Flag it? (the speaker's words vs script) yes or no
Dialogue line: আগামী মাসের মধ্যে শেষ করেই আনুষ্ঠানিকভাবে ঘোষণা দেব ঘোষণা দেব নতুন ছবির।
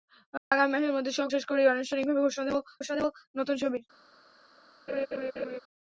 no